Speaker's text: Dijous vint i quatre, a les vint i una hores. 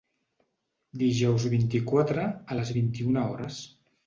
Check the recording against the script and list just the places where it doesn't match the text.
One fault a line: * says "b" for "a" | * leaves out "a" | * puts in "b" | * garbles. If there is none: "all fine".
all fine